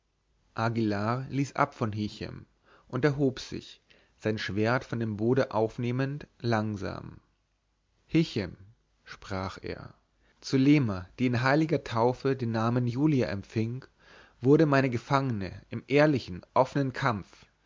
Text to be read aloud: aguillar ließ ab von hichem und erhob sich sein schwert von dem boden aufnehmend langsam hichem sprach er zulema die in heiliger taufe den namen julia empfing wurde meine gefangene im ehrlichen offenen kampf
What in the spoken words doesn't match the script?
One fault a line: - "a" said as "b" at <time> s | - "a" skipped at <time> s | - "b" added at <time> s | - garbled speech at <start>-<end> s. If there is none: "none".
none